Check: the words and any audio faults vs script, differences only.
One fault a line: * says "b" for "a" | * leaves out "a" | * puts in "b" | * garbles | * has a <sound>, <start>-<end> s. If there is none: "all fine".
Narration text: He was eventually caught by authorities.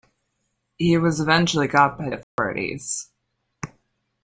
* has a dropout, 2.2-2.4 s